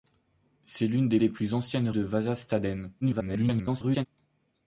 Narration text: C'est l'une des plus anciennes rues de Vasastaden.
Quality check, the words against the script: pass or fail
fail